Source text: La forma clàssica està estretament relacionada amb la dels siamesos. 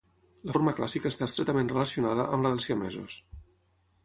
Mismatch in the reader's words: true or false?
false